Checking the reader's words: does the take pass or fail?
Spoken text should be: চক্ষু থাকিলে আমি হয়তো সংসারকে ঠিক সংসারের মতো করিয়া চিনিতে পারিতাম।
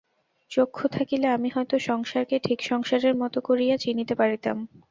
pass